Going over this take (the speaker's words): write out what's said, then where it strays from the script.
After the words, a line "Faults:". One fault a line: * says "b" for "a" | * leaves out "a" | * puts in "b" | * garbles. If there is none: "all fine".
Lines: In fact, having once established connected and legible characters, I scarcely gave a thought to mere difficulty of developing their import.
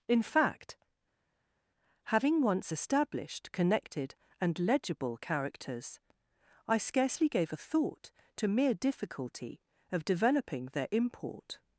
In fact, having once established connected and legible characters, I scarcely gave a thought to mere difficulty of developing their import.
Faults:
all fine